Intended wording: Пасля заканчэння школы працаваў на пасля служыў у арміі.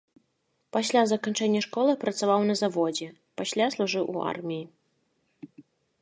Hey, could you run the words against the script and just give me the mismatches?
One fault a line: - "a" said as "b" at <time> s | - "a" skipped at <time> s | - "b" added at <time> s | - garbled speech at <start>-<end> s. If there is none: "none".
- "заводзе" added at 2.6 s